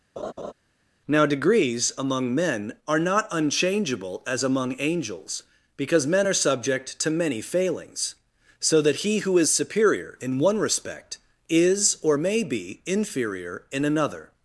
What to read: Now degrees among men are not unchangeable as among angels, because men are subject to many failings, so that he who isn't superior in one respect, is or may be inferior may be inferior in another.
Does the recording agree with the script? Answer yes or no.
no